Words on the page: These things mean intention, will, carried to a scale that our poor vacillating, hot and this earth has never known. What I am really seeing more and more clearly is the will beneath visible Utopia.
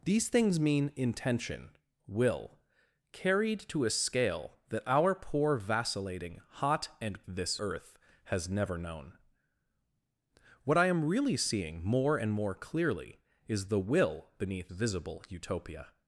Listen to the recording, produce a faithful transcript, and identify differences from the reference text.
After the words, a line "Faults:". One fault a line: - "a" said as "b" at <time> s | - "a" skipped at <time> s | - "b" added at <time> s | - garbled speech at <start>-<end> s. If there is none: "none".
These things mean intention, will, carried to a scale that our poor vacillating, hot and this earth has never known. What I am really seeing more and more clearly is the will beneath visible Utopia.
Faults:
none